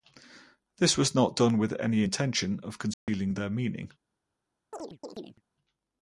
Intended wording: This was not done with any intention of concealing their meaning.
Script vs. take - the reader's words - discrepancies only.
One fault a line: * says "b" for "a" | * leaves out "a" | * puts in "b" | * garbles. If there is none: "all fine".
all fine